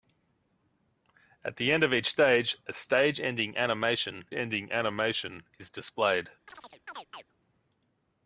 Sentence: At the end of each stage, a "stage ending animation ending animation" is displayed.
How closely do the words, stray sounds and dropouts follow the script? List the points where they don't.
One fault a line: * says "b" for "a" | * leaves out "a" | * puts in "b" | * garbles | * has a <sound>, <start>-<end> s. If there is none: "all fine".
* has a chirp, 6.5-7.3 s